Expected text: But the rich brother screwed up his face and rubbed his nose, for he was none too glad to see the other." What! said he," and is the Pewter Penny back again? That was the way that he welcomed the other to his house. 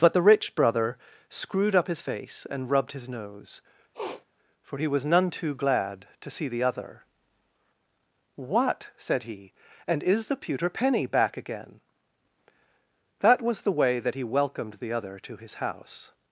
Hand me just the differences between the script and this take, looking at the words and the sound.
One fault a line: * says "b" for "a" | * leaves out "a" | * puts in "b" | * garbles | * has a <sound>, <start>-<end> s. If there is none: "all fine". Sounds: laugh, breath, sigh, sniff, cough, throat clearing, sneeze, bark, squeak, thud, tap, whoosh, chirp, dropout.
* has a sniff, 3.9-4.2 s